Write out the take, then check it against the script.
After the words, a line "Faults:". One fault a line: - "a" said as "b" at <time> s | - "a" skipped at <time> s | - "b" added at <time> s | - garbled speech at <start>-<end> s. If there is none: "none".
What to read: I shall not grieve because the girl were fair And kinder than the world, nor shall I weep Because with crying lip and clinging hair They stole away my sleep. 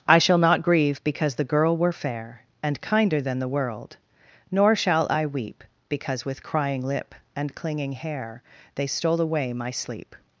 I shall not grieve because the girl were fair And kinder than the world, nor shall I weep Because with crying lip and clinging hair They stole away my sleep.
Faults:
none